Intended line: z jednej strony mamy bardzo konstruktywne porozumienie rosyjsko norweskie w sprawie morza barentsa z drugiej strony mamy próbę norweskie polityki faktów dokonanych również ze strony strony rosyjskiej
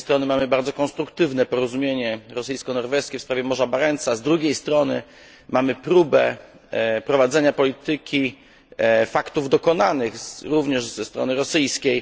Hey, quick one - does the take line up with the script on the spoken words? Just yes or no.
no